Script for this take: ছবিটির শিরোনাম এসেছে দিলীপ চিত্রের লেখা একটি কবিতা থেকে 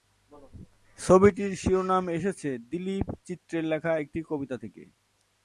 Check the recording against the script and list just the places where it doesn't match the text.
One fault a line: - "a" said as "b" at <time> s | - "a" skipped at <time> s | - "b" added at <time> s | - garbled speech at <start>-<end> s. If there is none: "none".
none